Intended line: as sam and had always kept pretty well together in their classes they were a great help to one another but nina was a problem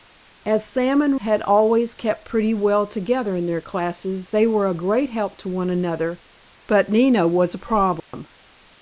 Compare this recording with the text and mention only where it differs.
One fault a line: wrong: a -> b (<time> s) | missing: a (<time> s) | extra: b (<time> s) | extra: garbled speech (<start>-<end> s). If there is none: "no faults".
no faults